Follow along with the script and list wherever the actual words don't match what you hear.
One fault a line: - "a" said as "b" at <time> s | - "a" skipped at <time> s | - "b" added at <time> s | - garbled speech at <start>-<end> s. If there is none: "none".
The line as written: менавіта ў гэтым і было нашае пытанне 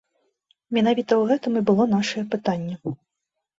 none